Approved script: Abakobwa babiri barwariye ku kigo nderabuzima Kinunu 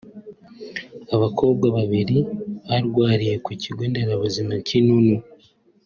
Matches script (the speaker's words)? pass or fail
pass